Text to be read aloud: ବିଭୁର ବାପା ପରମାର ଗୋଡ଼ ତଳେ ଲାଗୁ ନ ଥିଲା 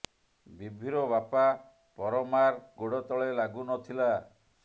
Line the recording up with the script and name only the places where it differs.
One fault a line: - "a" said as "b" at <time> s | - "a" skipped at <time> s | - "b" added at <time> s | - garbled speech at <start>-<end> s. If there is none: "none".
none